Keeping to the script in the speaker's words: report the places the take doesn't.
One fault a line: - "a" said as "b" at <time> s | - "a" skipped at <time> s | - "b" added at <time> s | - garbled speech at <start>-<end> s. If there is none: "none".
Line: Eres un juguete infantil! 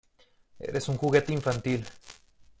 none